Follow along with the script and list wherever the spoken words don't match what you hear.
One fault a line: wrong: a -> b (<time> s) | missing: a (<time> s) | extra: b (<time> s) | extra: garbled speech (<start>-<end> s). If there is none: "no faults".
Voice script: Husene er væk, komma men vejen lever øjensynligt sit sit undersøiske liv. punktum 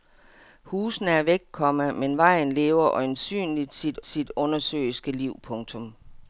no faults